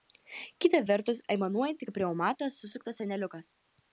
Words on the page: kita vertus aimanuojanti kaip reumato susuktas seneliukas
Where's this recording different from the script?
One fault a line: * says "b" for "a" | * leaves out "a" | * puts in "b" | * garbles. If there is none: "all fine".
all fine